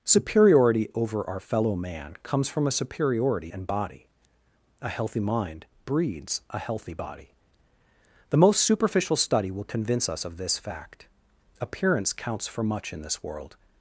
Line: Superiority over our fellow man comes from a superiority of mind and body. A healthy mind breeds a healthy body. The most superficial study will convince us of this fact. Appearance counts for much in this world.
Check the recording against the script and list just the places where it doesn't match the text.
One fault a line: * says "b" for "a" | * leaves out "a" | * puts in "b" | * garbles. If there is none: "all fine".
* leaves out "of mind"